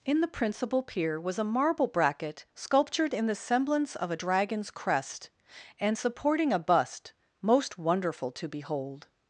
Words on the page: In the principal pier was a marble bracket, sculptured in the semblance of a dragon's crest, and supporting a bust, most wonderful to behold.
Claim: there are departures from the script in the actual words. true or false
false